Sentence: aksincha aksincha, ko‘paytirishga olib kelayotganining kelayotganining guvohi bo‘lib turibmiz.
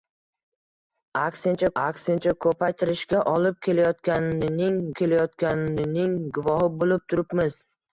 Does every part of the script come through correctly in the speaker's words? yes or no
yes